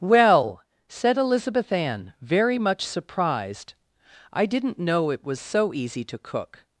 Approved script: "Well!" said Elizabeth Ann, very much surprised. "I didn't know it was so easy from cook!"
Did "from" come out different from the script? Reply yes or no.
yes